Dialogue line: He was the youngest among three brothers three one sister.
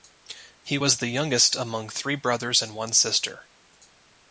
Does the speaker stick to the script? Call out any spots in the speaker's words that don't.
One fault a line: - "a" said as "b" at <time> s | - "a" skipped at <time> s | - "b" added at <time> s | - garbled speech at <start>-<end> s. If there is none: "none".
- "three" said as "and" at 2.6 s